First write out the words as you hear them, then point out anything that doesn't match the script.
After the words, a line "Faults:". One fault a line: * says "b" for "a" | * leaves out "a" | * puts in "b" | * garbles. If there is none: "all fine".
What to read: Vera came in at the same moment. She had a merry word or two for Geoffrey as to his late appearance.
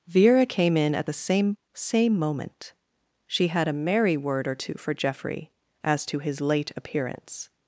Vera came in at the same same moment. She had a merry word or two for Geoffrey as to his late appearance.
Faults:
* puts in "same"